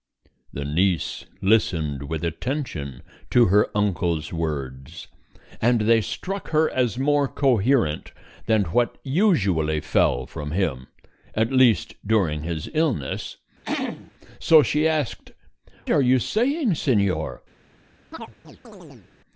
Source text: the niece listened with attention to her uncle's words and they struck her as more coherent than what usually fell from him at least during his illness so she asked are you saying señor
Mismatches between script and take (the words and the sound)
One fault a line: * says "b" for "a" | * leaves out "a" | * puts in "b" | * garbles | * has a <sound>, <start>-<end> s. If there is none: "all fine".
* has a throat clearing, 13.6-14.1 s
* has a chirp, 18.1-19.1 s